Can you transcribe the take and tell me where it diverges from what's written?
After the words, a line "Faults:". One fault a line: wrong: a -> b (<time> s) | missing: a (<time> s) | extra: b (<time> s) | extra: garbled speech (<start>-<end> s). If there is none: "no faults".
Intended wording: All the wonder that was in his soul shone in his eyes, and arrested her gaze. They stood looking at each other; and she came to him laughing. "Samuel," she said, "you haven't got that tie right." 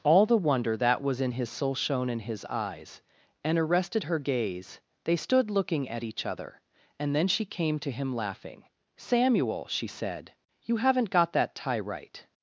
All the wonder that was in his soul shone in his eyes, and arrested her gaze. They stood looking at each other; and then she came to him laughing. "Samuel," she said, "you haven't got that tie right."
Faults:
extra: then (7.1 s)